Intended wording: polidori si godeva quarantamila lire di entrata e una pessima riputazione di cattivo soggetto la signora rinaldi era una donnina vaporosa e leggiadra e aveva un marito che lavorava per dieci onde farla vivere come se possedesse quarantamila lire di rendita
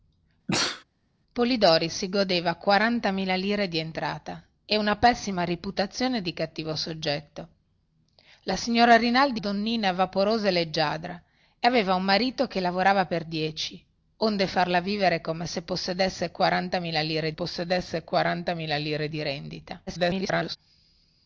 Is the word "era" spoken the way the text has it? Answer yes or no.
no